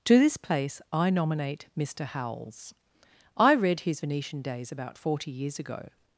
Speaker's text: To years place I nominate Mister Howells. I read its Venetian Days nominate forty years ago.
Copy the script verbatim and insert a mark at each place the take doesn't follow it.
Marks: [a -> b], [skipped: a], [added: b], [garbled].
To [years -> this] place I nominate Mister Howells. I read [its -> his] Venetian Days [nominate -> about] forty years ago.